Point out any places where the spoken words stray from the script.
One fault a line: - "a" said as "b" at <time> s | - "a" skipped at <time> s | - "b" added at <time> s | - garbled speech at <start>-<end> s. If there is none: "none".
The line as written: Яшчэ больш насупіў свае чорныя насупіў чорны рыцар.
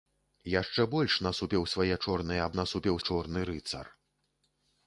none